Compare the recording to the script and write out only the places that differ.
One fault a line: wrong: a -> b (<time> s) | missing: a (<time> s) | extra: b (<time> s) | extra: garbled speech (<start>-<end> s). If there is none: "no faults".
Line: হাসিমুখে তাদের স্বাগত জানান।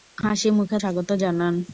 missing: তাদের (0.8 s)